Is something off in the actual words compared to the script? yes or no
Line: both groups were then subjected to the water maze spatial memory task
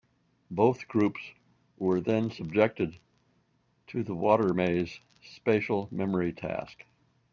no